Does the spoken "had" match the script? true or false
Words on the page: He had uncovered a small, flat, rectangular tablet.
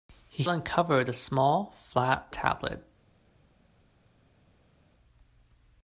false